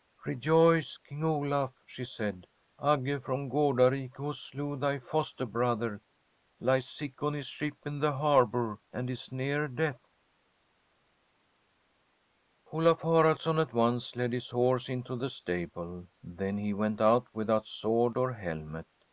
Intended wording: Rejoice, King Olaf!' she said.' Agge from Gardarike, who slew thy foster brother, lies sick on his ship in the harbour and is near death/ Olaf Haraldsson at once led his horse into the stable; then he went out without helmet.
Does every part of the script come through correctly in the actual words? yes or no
no